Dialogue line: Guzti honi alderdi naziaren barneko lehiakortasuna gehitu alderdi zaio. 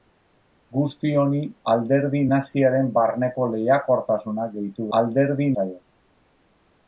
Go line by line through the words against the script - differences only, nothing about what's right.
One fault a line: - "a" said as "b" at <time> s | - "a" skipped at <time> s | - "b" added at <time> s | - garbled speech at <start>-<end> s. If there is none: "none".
none